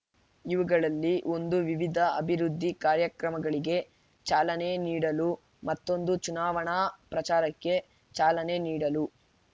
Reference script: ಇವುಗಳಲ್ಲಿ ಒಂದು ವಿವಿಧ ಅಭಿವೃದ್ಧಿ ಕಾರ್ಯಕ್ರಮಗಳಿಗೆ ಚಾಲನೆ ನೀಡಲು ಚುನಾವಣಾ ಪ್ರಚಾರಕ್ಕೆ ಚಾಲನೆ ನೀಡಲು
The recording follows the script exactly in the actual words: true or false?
false